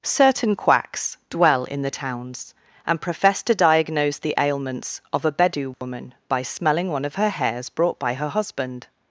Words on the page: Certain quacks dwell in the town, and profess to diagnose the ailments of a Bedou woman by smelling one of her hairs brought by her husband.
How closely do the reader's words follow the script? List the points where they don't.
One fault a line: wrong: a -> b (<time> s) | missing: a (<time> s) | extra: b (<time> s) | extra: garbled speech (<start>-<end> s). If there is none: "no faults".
wrong: town -> towns (1.9 s)